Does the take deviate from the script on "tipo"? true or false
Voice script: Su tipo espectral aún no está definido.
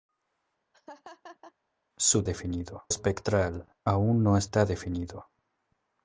true